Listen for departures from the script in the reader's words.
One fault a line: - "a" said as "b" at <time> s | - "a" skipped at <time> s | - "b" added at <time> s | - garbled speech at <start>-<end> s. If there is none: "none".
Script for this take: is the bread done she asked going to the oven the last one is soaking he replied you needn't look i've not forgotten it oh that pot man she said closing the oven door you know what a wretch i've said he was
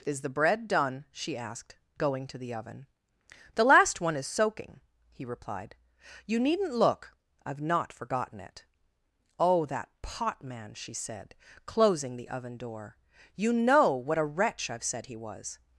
none